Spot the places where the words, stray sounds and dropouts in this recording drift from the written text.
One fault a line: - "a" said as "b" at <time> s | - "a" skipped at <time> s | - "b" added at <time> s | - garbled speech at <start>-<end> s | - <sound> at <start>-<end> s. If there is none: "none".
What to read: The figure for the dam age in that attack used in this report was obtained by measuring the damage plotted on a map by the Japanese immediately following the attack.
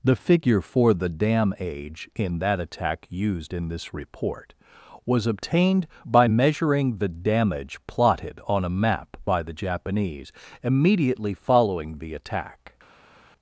none